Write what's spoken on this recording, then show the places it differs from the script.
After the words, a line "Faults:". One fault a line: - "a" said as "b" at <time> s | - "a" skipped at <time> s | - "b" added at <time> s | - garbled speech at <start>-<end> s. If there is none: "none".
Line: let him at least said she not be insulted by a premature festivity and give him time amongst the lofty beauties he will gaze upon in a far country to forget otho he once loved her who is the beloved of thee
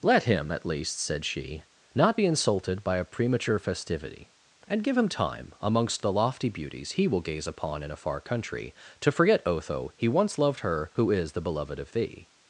let him at least said she not be insulted by a premature festivity and give him time amongst the lofty beauties he will gaze upon in a far country to forget otho he once loved her who is the beloved of thee
Faults:
none